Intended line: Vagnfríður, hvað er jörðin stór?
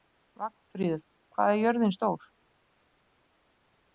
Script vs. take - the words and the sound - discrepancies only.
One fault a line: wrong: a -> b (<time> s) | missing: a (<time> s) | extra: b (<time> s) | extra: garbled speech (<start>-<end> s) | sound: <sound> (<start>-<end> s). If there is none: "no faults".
no faults